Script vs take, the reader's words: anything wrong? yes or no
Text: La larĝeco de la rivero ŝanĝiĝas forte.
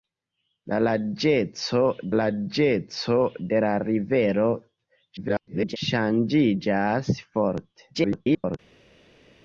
yes